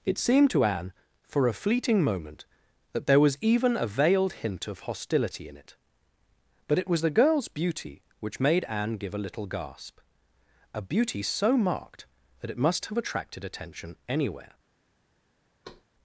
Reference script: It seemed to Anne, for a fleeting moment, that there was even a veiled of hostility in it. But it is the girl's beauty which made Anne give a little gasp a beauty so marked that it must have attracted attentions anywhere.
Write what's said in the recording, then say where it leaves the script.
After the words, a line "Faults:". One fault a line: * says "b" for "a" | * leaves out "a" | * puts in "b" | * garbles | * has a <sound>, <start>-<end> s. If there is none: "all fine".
It seemed to Anne, for a fleeting moment, that there was even a veiled hint of hostility in it. But it was the girl's beauty which made Anne give a little gasp a beauty so marked that it must have attracted attention anywhere.
Faults:
* puts in "hint"
* says "was" for "is"
* says "attention" for "attentions"
* has a thud, 15.6-15.8 s